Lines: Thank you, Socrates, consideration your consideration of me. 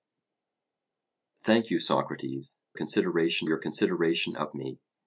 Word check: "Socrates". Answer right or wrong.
right